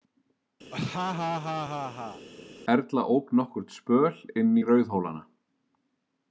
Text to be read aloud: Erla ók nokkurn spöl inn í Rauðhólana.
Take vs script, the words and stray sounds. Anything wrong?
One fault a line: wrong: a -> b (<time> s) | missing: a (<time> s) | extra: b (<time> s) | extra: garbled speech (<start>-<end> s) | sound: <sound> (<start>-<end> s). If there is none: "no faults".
sound: laugh (0.7-2.3 s)